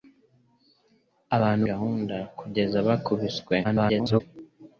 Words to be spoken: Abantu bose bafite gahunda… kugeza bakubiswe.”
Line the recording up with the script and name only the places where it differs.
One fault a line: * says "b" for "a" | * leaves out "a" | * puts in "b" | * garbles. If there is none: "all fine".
* leaves out "bose bafite"
* garbles